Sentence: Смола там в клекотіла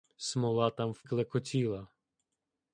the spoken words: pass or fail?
pass